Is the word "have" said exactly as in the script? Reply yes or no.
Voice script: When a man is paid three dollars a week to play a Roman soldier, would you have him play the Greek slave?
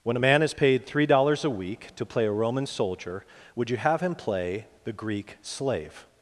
yes